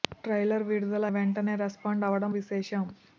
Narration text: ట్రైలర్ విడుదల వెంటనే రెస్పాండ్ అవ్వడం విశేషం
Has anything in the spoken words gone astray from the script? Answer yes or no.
no